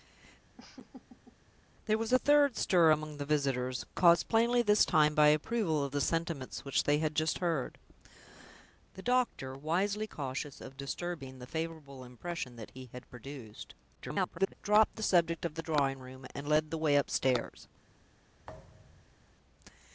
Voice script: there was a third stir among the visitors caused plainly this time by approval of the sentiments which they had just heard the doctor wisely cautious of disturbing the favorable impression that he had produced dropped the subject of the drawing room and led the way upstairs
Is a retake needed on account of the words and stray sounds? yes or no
yes